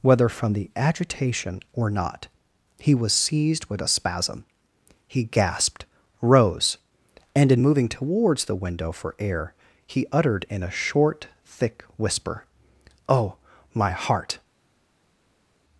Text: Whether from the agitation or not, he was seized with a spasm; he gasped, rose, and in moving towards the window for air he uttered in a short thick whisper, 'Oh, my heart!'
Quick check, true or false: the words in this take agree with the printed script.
true